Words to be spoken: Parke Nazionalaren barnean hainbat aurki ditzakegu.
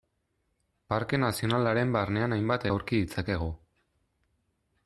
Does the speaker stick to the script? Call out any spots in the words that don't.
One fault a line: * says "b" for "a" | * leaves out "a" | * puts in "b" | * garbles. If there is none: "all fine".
all fine